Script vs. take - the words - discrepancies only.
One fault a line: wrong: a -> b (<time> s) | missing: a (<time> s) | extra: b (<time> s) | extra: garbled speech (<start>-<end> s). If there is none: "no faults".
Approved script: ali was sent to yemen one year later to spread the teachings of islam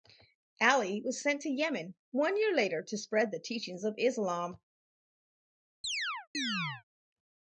no faults